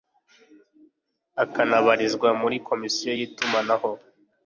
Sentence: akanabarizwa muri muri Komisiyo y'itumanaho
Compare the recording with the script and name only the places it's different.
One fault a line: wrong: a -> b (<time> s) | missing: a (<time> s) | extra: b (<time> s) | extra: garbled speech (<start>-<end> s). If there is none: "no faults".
missing: muri (2.6 s)